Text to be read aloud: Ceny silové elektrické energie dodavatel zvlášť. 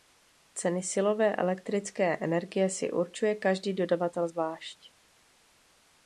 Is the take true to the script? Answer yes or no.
no